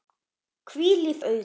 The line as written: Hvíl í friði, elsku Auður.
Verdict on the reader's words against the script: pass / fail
fail